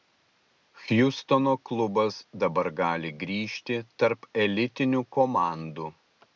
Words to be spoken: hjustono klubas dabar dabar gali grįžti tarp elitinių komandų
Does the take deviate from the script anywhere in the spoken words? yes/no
yes